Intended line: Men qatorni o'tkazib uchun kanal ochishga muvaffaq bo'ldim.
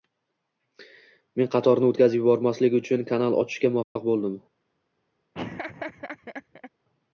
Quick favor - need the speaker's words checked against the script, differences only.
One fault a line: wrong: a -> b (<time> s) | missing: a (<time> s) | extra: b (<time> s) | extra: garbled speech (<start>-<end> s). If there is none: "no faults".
extra: yubormaslik (2.2 s)